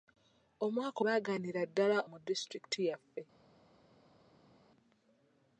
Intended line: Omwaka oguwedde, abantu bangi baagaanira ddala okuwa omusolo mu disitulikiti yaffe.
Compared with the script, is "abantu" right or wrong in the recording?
wrong